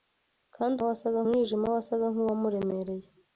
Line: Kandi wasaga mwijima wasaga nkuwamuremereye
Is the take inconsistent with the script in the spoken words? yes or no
no